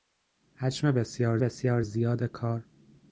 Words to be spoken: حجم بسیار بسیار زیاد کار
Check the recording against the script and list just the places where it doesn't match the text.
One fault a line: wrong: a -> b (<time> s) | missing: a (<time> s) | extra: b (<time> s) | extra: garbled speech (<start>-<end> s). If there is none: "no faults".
no faults